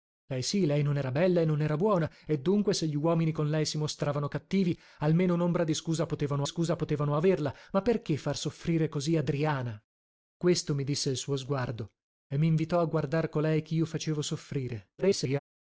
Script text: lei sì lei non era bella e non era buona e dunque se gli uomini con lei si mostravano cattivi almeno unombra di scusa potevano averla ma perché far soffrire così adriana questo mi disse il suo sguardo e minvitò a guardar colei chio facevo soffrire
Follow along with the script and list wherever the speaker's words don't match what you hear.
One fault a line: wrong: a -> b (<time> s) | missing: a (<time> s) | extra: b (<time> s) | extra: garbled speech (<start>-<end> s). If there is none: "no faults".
extra: scusa potevano (6.5 s)
extra: garbled speech (15.0-15.4 s)